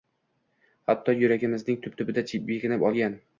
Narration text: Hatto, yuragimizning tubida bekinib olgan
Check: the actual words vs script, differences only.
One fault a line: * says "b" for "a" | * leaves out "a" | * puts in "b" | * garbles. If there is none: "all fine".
* puts in "tub"